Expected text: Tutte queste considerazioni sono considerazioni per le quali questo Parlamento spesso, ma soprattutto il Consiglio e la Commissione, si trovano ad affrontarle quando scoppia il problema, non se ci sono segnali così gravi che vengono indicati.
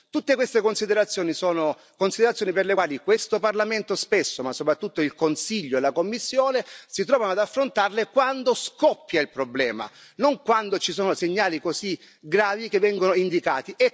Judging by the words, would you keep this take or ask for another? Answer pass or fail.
fail